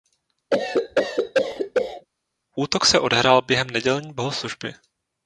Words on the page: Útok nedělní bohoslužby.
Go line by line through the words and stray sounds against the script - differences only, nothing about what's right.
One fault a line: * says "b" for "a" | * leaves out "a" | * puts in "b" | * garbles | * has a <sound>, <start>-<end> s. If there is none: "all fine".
* has a cough, 0.5-2.1 s
* puts in "se odehrál během"